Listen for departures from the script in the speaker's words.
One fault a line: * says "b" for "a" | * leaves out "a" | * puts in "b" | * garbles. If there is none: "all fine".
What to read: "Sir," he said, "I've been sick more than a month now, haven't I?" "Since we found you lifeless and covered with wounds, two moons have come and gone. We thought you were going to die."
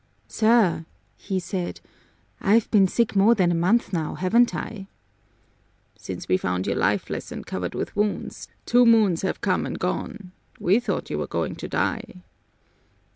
all fine